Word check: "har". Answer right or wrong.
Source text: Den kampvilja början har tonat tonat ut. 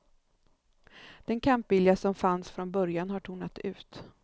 right